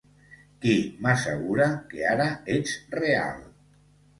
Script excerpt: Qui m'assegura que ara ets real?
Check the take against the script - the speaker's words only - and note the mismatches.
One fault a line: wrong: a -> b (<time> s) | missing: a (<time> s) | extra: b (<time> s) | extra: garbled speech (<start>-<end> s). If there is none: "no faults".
no faults